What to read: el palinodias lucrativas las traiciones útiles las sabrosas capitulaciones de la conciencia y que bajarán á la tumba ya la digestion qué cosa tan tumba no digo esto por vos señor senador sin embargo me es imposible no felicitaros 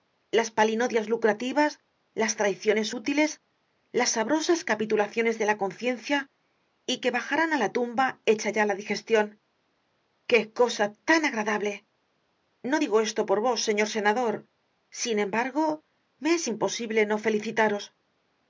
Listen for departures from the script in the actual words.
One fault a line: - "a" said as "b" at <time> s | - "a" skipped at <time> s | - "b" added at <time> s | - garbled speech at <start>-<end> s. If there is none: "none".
- "el" said as "las" at 0.3 s
- "hecha" added at 8.3 s
- "tumba" said as "agradable" at 11.3 s